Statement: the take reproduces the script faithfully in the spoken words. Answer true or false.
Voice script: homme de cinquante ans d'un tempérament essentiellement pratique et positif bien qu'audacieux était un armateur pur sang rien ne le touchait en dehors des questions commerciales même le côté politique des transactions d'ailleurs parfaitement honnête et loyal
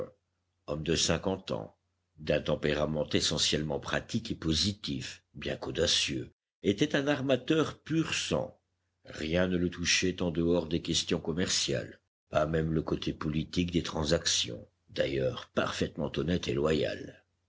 false